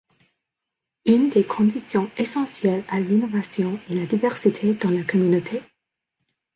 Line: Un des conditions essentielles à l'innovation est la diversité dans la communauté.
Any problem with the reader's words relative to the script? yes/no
yes